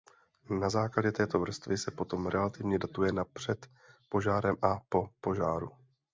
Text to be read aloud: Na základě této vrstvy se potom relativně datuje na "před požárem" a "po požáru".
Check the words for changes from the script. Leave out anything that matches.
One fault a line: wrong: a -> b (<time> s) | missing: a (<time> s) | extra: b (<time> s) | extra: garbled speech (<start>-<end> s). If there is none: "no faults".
no faults